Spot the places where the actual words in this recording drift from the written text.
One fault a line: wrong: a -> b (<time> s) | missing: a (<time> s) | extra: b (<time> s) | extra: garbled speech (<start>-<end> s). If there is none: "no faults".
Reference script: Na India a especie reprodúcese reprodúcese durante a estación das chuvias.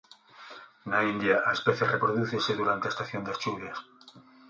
missing: reprodúcese (2.5 s)